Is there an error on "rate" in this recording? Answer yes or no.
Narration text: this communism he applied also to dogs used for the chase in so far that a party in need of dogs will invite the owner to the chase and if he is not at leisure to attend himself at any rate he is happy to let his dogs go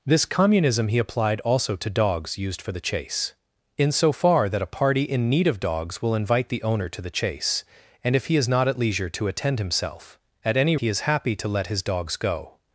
yes